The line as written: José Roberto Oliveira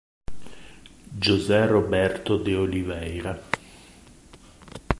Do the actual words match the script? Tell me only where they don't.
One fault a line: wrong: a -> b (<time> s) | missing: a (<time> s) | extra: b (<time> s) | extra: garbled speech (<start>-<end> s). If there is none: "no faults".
extra: de (2.4 s)